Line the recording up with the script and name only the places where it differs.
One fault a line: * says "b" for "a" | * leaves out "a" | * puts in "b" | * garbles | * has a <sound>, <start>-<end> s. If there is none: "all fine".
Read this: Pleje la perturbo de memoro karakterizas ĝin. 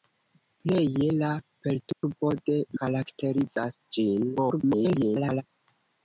* has a dropout, 1.9-2.0 s
* leaves out "memoro"
* garbles